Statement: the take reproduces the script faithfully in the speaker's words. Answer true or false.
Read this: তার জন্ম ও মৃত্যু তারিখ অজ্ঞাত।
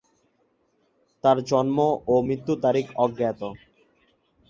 true